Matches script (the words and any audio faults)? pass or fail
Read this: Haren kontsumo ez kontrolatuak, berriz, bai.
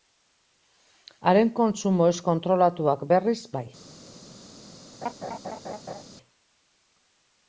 fail